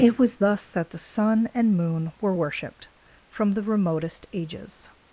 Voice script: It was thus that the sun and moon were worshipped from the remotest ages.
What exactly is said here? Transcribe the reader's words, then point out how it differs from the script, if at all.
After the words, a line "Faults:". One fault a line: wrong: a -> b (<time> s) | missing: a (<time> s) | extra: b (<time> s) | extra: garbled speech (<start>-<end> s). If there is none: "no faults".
It was thus that the sun and moon were worshipped from the remotest ages.
Faults:
no faults